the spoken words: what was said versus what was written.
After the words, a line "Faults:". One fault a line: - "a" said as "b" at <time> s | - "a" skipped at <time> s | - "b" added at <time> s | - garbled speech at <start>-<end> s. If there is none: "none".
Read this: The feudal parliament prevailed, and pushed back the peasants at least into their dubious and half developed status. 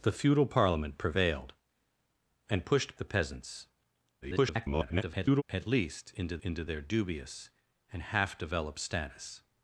The feudal parliament prevailed, and pushed the peasants [garbled] at least into into their dubious and half developed status.
Faults:
- "back" skipped at 3.0 s
- garbled speech at 4.2-5.4 s
- "into" added at 6.4 s